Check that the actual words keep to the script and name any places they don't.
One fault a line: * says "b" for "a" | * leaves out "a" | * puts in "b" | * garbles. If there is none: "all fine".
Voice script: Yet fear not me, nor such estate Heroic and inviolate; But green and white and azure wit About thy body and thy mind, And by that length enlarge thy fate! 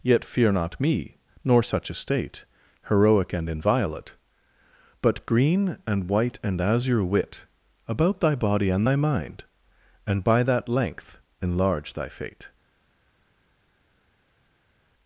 all fine